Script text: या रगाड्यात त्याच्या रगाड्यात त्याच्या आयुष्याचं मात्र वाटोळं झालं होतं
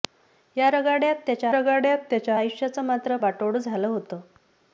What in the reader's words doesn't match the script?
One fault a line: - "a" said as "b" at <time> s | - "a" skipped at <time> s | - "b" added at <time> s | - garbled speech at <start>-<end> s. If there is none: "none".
none